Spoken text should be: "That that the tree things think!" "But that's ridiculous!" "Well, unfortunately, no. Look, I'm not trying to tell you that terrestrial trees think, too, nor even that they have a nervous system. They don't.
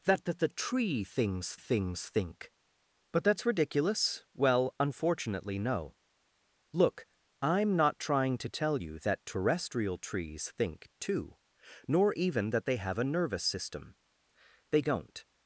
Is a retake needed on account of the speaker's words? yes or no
yes